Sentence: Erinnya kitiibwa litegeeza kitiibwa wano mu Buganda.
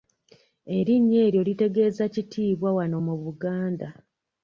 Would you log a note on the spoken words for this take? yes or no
yes